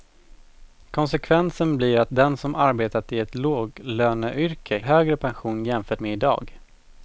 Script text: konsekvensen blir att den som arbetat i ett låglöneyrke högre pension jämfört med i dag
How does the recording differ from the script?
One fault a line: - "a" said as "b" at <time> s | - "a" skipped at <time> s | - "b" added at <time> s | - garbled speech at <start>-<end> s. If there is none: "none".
none